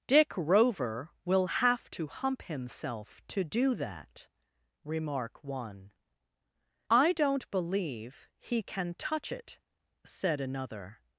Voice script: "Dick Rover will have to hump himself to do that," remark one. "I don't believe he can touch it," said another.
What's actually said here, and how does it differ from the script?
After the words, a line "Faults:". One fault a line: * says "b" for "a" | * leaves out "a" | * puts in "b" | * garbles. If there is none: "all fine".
"Dick Rover will have to hump himself to do that," remark one. "I don't believe he can touch it," said another.
Faults:
all fine